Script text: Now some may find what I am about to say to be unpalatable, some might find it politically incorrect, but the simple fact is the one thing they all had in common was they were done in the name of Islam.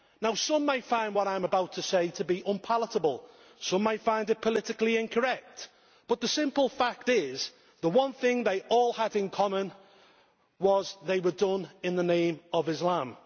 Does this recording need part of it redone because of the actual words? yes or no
no